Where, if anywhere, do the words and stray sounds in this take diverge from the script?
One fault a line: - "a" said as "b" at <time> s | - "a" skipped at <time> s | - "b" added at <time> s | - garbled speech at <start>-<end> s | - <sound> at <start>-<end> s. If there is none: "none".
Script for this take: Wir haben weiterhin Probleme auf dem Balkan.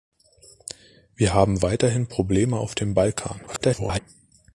- garbled speech at 3.5-4.0 s